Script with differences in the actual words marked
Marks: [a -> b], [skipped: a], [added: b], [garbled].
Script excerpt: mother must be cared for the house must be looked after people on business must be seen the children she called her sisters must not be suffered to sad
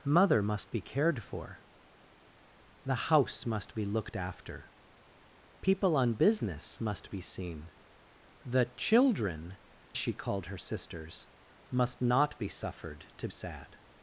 mother must be cared for the house must be looked after people on business must be seen the children she called her sisters must not be suffered to sad